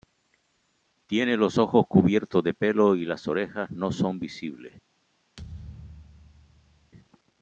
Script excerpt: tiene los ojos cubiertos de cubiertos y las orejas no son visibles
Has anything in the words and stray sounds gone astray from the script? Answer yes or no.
yes